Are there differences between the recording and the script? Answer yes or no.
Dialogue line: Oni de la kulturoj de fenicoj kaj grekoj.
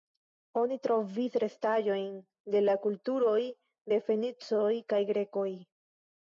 yes